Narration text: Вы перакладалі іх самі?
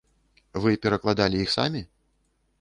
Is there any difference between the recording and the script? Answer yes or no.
no